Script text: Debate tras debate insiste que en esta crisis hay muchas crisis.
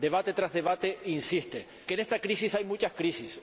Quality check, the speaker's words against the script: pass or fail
pass